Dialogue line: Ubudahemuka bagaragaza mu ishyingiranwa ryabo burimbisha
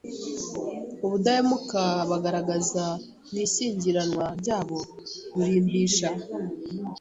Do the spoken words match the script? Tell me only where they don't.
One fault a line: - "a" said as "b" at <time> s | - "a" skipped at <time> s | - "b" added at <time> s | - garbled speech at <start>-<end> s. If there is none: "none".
none